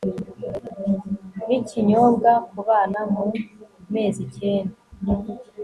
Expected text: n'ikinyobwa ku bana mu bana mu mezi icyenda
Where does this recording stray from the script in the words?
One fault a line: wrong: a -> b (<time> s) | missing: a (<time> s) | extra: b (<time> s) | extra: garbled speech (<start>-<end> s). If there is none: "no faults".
missing: bana mu (3.2 s)